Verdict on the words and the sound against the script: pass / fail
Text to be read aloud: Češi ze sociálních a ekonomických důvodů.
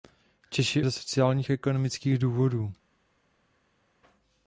pass